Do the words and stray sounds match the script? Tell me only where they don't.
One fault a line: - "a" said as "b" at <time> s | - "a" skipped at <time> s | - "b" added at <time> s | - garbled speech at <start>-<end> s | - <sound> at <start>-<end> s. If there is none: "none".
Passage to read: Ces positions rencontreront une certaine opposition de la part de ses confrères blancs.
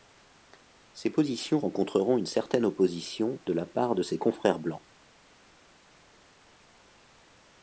none